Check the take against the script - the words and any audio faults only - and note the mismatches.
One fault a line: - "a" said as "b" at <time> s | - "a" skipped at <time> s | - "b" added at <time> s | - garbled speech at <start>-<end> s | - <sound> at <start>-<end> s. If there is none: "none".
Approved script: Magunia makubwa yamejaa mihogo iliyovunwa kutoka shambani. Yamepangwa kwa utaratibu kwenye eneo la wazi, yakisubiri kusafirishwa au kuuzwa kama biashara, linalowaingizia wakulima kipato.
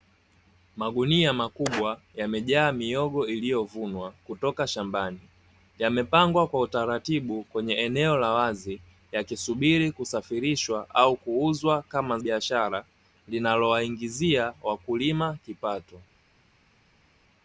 none